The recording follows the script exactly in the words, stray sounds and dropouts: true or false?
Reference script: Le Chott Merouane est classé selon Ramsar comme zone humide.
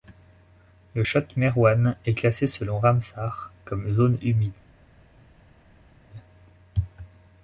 true